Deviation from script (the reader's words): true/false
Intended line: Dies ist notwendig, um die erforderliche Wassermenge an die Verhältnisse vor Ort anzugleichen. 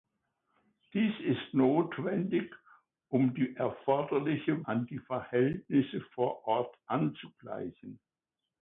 true